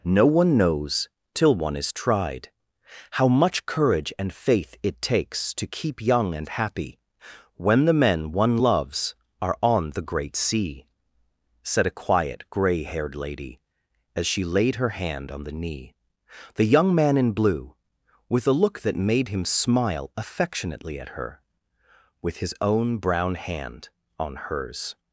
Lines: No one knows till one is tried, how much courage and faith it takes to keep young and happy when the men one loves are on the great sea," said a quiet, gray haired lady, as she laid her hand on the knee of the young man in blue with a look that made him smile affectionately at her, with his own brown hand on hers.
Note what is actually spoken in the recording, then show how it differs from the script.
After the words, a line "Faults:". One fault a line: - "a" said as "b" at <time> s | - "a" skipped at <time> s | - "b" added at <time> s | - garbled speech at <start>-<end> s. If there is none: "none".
No one knows till one is tried, how much courage and faith it takes to keep young and happy when the men one loves are on the great sea," said a quiet, gray haired lady, as she laid her hand on the knee the young man in blue with a look that made him smile affectionately at her, with his own brown hand on hers.
Faults:
- "of" skipped at 15.9 s